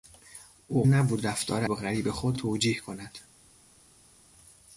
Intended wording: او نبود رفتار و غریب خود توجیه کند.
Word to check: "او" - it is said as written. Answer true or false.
true